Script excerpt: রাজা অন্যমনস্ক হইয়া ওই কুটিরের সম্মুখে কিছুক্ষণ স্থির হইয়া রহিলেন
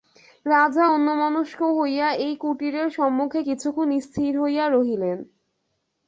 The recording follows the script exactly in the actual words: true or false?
false